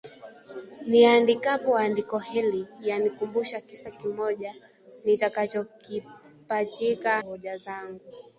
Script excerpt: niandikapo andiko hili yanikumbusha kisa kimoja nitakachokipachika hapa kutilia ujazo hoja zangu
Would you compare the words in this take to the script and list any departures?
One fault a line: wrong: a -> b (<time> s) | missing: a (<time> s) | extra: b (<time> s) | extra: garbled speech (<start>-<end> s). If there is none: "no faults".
missing: hapa kutilia ujazo (7.2 s)